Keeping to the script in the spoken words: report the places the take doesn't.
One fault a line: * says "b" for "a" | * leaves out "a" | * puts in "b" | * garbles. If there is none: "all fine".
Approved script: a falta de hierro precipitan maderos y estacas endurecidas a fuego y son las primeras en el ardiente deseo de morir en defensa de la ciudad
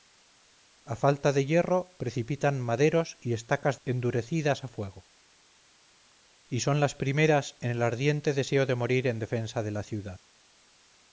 all fine